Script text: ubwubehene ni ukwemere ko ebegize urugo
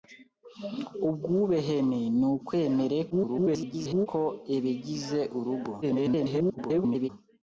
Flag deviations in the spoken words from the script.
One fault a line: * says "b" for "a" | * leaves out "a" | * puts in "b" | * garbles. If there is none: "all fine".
* garbles
* garbles